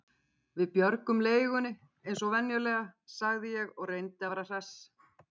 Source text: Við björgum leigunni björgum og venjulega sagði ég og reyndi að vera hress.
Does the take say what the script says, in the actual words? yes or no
no